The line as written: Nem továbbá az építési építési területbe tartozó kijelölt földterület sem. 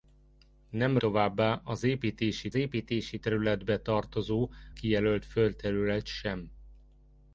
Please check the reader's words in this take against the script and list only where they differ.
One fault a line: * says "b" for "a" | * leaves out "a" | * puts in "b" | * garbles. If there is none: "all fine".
all fine